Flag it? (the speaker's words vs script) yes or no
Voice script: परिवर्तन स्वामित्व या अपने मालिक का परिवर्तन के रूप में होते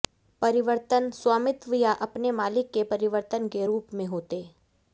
yes